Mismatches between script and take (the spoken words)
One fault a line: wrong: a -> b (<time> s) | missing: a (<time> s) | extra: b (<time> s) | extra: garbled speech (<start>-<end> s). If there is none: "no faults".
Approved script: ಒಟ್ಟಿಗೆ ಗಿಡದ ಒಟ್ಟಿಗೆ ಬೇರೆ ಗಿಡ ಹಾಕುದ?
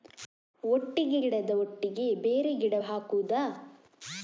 no faults